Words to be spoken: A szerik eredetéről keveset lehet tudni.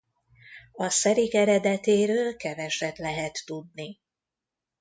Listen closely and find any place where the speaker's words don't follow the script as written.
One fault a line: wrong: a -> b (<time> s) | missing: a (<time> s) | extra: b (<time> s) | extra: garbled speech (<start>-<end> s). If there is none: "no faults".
no faults